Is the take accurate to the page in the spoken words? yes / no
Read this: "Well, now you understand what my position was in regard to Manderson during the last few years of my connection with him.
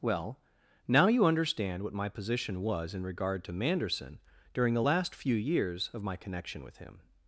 yes